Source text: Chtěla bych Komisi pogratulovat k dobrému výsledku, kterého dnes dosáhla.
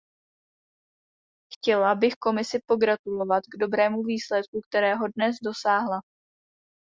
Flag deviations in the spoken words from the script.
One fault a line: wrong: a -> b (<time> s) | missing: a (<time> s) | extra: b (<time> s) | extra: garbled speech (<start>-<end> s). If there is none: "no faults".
no faults